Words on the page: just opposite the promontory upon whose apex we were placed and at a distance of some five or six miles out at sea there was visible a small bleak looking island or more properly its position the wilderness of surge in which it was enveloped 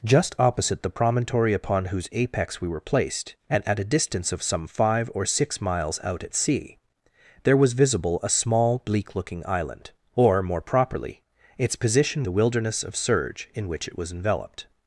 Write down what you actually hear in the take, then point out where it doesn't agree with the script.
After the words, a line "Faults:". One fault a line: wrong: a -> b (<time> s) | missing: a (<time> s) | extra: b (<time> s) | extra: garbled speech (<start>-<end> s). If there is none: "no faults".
just opposite the promontory upon whose apex we were placed and at a distance of some five or six miles out at sea there was visible a small bleak looking island or more properly its position the wilderness of surge in which it was enveloped
Faults:
no faults